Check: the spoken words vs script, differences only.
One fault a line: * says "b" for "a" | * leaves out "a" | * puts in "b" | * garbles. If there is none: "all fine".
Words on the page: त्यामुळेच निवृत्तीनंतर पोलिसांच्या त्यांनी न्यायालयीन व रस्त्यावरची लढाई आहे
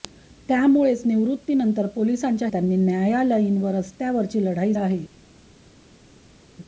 all fine